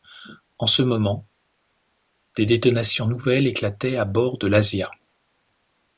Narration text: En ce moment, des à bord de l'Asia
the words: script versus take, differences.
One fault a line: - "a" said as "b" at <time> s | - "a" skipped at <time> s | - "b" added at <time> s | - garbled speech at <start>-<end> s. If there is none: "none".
- "détonations nouvelles éclataient" added at 2.4 s